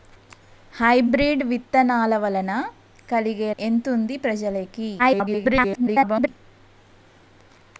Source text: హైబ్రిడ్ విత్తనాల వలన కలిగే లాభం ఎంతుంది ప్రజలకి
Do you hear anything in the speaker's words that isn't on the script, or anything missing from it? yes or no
yes